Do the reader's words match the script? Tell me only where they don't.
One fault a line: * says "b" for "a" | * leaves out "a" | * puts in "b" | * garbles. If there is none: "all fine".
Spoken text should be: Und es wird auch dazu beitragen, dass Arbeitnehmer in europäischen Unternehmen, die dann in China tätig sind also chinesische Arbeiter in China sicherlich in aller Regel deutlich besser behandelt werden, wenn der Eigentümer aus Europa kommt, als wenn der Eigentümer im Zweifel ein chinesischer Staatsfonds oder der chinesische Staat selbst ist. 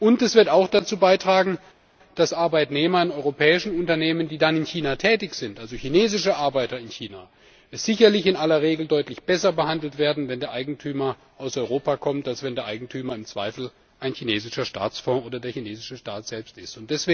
all fine